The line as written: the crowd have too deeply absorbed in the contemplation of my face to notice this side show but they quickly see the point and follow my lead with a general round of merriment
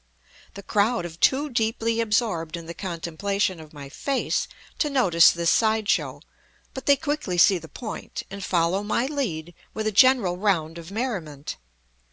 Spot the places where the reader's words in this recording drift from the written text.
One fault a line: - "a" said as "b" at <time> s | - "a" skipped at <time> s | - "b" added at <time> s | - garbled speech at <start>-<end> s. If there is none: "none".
none